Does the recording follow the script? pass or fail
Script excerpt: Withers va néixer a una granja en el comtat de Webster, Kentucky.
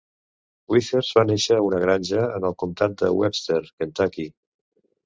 pass